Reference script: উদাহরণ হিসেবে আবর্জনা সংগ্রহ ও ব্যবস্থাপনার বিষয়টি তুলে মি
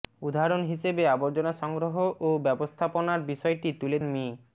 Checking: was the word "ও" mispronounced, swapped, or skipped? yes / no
no